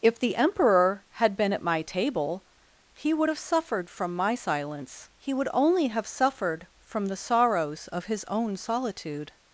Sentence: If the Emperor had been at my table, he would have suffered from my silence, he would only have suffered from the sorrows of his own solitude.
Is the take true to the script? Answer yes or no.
yes